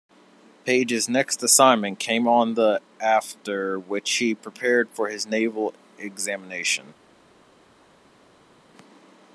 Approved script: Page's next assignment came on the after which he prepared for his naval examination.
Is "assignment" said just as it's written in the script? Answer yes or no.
yes